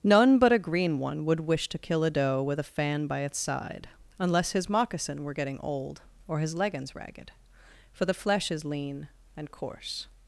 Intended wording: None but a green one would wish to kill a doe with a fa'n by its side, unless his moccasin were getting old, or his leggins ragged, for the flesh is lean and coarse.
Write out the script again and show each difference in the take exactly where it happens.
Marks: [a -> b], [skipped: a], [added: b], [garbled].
None but a green one would wish to kill a doe with a fa'n by its side, unless his moccasin were getting old, or his leggins ragged, for the flesh is lean and coarse.